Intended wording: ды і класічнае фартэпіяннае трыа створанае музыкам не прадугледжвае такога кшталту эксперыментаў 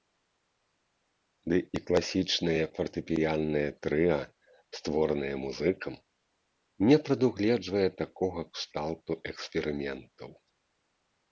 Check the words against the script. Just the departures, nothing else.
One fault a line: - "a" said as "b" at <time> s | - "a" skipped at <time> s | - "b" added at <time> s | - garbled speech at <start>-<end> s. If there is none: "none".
none